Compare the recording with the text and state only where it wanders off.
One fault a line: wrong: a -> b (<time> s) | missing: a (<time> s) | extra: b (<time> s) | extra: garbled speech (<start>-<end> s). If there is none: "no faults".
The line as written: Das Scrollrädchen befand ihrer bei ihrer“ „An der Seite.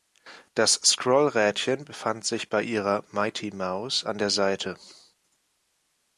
wrong: ihrer -> sich (2.2 s)
extra: Mighty Mouse (3.1 s)